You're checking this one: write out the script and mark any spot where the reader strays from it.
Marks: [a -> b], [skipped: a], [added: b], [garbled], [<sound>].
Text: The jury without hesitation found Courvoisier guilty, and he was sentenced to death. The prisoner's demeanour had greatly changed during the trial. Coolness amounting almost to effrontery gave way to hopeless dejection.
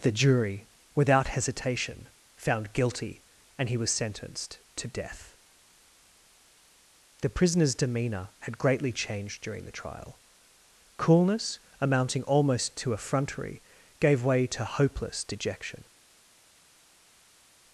The jury without hesitation found [skipped: Courvoisier] guilty, and he was sentenced to death. The prisoner's demeanour had greatly changed during the trial. Coolness amounting almost to effrontery gave way to hopeless dejection.